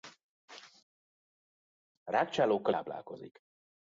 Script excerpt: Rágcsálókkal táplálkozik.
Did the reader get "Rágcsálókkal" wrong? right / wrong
right